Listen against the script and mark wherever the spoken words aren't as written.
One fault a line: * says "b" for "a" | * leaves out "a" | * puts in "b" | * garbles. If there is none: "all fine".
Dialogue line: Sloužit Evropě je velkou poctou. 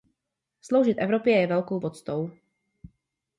all fine